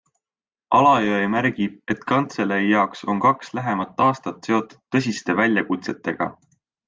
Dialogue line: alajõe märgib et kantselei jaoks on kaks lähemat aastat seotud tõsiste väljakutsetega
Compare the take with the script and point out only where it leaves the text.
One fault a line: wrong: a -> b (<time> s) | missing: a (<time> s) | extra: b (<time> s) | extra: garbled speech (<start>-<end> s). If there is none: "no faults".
no faults